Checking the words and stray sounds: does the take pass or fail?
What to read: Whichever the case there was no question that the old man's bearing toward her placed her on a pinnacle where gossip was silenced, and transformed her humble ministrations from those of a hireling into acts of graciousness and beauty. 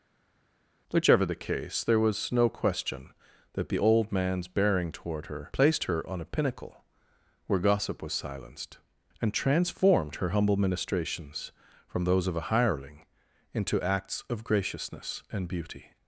pass